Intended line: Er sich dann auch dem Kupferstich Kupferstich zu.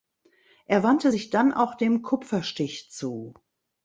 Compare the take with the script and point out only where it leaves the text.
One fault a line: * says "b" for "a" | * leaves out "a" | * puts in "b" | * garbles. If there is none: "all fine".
* puts in "wandte"
* leaves out "Kupferstich"